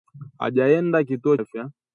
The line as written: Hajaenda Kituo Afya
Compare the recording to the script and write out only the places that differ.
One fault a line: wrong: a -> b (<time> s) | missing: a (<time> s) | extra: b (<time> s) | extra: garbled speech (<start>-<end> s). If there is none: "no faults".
no faults